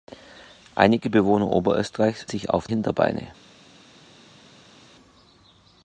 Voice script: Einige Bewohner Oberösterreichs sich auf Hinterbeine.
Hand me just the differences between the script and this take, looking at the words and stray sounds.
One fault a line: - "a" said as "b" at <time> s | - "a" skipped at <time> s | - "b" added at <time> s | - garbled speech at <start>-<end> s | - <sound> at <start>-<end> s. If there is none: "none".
none